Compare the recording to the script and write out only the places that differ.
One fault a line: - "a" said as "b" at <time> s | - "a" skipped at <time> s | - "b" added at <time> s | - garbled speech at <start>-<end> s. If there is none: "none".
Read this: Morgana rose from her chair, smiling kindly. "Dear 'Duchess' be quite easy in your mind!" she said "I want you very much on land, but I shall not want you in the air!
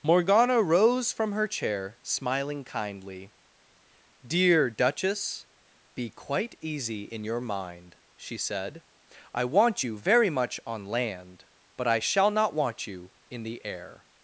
none